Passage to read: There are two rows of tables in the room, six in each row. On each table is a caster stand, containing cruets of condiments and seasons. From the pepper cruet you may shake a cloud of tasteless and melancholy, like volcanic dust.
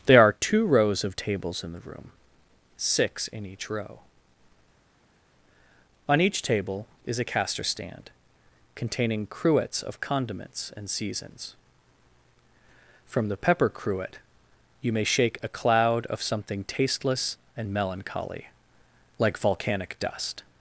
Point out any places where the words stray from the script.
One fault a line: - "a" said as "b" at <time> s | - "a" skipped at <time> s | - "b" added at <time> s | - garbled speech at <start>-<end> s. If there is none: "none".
- "something" added at 16.2 s